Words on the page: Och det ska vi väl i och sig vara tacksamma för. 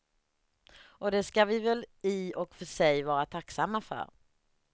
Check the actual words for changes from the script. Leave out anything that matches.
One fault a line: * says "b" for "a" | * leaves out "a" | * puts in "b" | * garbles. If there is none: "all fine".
* puts in "för"